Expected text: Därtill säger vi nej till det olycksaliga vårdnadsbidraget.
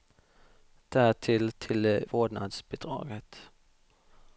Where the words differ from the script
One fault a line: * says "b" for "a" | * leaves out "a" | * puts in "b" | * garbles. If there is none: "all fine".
* leaves out "säger vi nej"
* leaves out "olycksaliga"